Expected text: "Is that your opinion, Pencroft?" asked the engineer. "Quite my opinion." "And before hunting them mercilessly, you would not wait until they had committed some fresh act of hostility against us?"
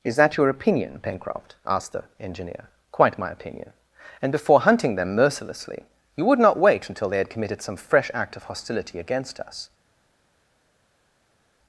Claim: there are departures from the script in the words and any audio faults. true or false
false